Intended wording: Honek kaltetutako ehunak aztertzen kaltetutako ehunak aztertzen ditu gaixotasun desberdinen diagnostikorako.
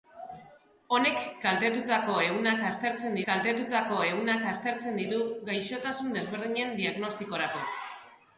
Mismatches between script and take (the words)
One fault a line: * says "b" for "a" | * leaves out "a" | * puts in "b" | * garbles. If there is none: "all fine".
all fine